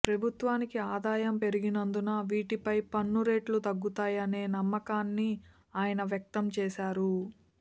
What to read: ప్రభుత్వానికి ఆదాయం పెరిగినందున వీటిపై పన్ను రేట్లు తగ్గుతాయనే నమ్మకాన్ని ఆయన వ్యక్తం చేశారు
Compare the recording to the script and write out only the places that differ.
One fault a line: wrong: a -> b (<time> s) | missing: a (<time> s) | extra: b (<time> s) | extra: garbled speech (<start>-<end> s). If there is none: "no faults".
no faults